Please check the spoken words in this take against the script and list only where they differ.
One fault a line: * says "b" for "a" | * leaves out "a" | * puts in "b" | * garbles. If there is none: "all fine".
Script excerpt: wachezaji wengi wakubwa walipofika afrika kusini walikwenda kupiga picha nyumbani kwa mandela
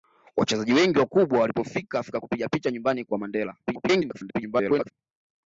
* leaves out "kusini walikwenda"
* garbles